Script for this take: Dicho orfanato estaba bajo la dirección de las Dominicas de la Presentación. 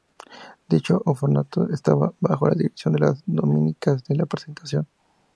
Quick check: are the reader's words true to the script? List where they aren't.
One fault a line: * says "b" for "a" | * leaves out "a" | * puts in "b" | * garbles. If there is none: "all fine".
all fine